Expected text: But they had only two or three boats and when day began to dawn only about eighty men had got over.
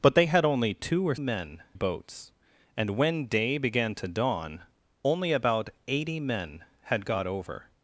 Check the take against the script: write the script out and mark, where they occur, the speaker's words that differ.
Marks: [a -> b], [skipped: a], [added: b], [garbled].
But they had only two or [three -> men] boats and when day began to dawn only about eighty men had got over.